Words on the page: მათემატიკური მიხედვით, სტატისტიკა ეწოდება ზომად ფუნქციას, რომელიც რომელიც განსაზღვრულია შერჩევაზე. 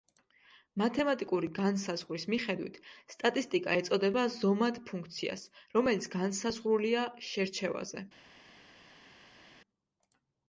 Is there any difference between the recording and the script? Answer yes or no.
yes